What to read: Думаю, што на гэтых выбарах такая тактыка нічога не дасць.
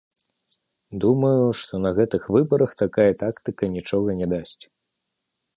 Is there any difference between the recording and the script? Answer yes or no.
no